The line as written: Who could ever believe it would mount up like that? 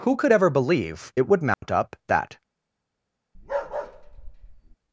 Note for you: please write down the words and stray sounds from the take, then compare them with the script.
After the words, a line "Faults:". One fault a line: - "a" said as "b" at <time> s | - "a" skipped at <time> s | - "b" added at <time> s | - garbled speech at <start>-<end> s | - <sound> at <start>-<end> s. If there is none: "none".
Who could ever believe it would mount up that?
Faults:
- dropout at 1.5-1.6 s
- "like" skipped at 1.9 s
- bark at 3.3-4.8 s